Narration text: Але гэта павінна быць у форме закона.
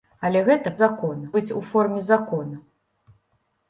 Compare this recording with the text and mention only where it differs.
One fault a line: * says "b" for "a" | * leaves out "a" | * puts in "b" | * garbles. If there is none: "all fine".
* says "закона" for "павінна"